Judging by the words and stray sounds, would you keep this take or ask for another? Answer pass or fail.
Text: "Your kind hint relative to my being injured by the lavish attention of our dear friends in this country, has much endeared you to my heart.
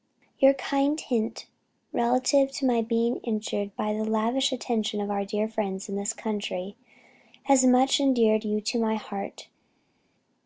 pass